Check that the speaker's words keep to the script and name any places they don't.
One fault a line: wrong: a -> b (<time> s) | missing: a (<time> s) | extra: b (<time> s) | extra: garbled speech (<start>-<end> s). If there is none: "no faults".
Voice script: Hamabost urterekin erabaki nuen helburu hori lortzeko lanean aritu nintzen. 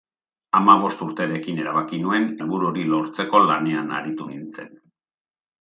no faults